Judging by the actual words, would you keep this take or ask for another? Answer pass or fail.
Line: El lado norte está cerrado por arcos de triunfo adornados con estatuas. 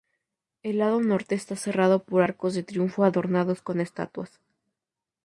pass